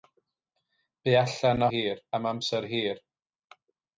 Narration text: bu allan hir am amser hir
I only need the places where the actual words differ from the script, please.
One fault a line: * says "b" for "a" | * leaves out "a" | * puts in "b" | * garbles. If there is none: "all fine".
all fine